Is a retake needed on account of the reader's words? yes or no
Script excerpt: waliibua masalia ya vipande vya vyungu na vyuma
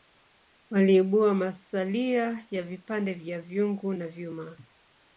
no